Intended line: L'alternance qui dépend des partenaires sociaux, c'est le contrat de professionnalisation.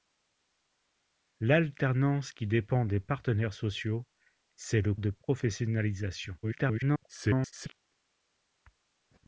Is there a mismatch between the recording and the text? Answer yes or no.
yes